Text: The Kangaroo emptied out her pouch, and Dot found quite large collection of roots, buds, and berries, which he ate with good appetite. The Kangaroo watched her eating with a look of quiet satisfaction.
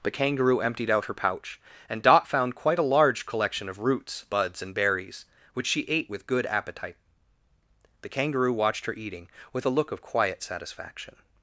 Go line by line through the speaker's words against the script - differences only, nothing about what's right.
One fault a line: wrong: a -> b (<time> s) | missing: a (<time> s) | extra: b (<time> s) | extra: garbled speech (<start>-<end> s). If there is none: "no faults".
extra: a (2.8 s)
wrong: he -> she (5.7 s)